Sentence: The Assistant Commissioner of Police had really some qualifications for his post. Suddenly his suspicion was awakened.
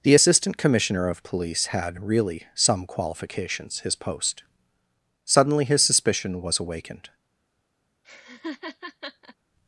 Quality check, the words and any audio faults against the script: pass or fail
fail